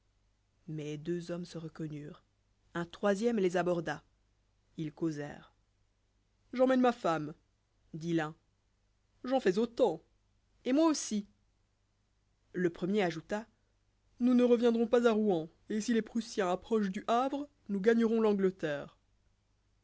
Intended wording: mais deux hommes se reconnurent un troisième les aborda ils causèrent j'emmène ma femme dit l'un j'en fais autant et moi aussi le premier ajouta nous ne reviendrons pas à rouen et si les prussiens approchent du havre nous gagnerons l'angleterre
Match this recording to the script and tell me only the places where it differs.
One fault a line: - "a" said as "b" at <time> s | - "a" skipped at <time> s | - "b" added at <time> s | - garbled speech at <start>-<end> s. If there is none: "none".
none